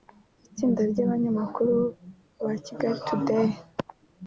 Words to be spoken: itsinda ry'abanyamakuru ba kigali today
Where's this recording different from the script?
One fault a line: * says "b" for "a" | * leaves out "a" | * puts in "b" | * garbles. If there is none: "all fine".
all fine